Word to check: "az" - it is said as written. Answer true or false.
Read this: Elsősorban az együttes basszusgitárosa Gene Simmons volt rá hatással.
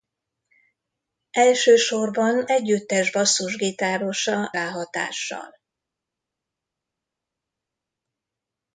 false